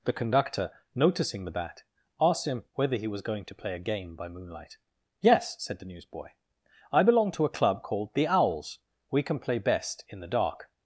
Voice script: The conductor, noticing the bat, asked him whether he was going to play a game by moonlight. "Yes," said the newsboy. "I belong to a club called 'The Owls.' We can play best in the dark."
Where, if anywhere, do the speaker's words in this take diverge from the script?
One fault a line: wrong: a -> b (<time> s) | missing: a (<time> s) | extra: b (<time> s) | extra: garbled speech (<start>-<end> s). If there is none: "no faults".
no faults